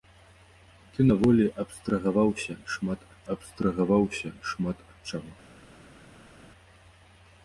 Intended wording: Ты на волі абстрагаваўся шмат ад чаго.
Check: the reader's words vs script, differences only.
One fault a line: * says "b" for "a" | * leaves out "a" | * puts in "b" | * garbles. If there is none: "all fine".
* puts in "абстрагаваўся шмат ад"